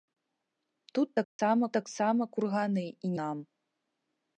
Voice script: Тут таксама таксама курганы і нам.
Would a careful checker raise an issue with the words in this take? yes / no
no